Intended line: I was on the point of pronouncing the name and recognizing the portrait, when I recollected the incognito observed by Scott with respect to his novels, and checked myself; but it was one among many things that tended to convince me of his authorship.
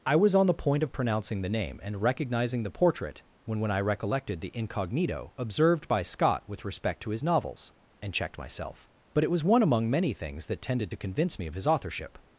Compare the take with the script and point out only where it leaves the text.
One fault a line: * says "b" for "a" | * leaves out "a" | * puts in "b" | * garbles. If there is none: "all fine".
* puts in "when"